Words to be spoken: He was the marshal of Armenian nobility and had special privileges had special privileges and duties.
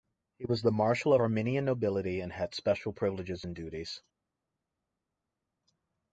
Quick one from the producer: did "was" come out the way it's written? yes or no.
yes